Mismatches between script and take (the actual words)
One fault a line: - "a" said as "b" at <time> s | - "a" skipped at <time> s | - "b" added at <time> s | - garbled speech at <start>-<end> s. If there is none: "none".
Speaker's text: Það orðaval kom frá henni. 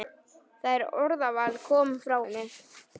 none